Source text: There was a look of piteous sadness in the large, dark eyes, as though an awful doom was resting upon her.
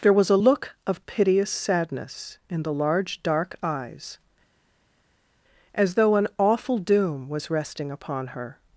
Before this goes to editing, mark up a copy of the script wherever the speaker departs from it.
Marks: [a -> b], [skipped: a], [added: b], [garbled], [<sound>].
There was a look of piteous sadness in the large, dark eyes, as though an awful doom was resting upon her.